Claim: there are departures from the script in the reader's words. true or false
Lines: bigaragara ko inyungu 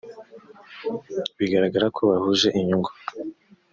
true